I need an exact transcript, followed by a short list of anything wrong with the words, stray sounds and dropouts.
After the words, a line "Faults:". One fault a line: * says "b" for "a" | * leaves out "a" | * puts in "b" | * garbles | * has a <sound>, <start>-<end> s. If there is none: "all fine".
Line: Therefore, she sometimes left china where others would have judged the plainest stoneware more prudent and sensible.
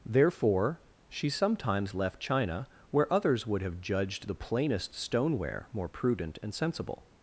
Therefore, she sometimes left china where others would have judged the plainest stoneware more prudent and sensible.
Faults:
all fine